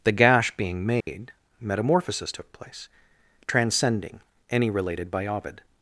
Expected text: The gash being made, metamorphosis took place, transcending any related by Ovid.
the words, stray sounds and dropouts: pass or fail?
fail